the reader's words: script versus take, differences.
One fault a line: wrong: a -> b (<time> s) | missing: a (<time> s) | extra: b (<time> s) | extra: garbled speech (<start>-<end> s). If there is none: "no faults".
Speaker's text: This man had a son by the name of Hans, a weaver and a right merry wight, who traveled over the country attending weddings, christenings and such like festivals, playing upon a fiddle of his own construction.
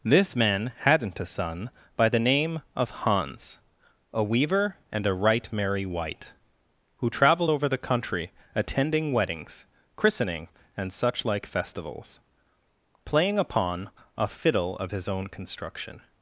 wrong: had -> hadn't (0.8 s)
wrong: christenings -> christening (10.0 s)